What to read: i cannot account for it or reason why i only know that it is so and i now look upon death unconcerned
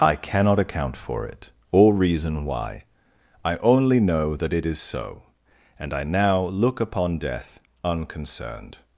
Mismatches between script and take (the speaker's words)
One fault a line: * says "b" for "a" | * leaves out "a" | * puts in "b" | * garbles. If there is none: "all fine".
all fine